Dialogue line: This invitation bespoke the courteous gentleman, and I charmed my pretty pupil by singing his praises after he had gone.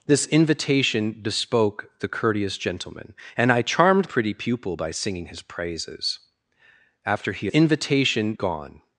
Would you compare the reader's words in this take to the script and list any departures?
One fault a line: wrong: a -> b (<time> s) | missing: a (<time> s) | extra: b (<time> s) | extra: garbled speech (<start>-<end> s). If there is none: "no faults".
missing: my (4.1 s)
wrong: had -> invitation (7.5 s)